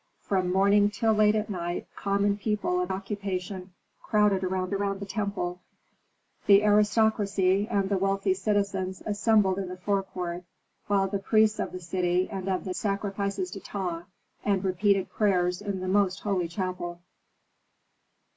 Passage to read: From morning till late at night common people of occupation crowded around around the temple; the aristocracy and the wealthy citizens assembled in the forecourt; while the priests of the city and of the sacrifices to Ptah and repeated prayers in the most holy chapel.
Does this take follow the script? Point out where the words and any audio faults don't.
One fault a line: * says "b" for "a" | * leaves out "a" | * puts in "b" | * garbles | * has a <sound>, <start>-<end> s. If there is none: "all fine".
all fine